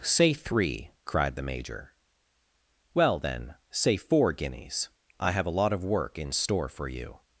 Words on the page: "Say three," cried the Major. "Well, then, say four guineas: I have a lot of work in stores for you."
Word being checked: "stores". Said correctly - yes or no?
no